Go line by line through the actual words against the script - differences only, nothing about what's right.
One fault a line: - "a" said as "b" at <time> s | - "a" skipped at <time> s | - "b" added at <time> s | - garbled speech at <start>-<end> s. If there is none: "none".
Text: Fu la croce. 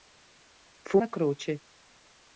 none